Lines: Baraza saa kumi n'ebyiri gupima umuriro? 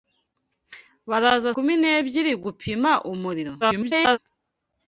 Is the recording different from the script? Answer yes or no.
yes